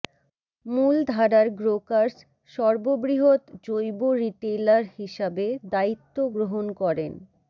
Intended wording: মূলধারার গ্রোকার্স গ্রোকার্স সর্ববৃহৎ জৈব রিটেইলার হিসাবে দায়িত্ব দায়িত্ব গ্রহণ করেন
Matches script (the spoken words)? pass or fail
fail